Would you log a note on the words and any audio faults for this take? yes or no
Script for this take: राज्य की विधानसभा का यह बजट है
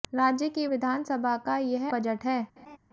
yes